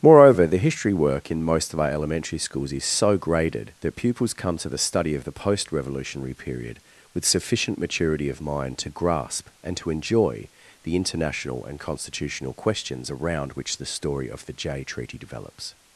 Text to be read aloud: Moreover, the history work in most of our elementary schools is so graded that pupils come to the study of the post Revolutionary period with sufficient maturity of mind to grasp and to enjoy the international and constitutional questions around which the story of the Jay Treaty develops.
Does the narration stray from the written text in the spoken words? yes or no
no